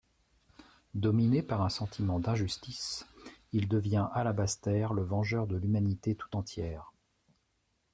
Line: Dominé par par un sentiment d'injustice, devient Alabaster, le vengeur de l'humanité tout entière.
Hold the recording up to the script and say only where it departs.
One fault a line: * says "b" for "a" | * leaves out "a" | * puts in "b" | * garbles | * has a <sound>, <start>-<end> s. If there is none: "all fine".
* leaves out "par"
* puts in "il"